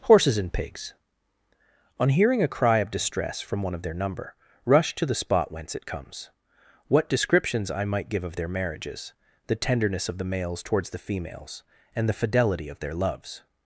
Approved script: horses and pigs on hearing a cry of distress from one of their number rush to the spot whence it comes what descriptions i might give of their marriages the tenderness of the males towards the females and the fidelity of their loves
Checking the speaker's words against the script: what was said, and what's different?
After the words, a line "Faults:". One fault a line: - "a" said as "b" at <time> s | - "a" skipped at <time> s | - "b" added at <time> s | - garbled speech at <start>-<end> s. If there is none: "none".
horses and pigs on hearing a cry of distress from one of their number rush to the spot whence it comes what descriptions i might give of their marriages the tenderness of the males towards the females and the fidelity of their loves
Faults:
none